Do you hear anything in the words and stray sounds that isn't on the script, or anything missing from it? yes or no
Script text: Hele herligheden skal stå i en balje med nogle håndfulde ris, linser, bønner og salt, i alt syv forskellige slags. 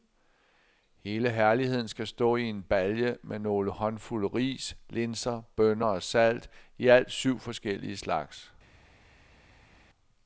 no